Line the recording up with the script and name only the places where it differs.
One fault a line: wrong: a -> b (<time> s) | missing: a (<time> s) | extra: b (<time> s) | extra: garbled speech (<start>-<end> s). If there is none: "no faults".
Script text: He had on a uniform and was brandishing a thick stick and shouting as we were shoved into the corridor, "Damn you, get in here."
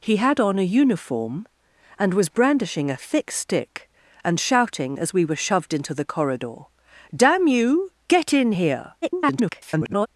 extra: garbled speech (9.0-10.1 s)